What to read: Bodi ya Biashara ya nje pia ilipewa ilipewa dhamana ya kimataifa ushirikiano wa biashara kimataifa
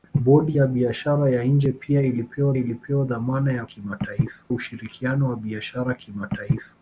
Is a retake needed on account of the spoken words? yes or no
no